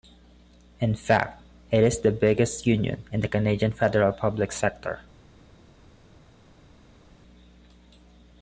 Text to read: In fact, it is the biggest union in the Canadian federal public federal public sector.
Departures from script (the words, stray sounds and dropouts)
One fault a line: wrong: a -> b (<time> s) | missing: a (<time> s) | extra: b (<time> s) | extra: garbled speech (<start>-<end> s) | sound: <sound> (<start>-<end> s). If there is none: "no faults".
missing: federal public (4.5 s)